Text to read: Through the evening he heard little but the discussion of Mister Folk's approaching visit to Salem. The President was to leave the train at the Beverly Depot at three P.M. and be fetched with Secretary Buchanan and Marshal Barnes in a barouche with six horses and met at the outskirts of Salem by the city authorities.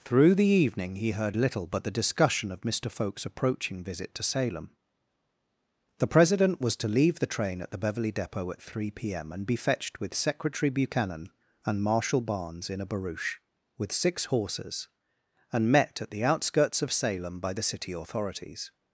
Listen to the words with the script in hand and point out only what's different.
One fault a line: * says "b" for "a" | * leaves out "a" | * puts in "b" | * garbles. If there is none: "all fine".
all fine